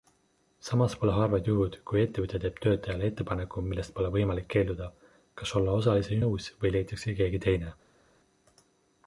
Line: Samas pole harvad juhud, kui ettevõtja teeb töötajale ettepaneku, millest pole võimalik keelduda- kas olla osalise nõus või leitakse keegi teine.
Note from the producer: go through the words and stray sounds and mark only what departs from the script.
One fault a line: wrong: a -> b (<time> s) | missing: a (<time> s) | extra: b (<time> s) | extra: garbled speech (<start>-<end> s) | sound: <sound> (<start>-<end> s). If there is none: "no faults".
no faults